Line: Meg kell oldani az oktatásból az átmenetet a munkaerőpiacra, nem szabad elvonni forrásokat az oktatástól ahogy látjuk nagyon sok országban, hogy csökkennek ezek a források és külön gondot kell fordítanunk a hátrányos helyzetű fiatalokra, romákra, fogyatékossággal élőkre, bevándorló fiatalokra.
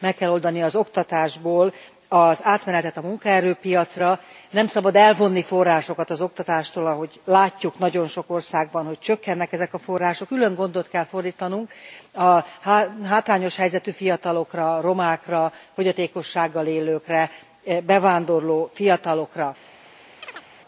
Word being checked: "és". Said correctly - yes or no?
no